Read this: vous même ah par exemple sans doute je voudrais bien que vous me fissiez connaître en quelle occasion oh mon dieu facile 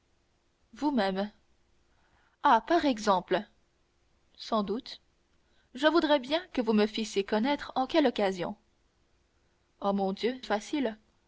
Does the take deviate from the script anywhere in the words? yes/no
no